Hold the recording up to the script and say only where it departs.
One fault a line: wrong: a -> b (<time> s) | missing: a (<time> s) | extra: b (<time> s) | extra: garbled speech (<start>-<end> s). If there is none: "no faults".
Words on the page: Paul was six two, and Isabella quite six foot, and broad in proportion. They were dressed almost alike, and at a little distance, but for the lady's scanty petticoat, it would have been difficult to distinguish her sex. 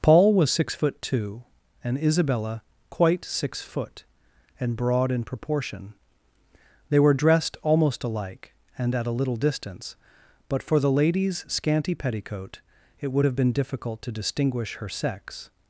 extra: foot (0.7 s)